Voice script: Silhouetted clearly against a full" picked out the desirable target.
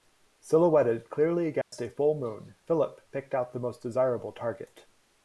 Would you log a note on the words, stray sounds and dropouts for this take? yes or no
yes